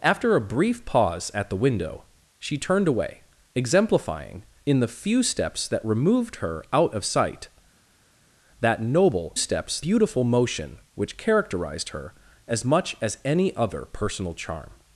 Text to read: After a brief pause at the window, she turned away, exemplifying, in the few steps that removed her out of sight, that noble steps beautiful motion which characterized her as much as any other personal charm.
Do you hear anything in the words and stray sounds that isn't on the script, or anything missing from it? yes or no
no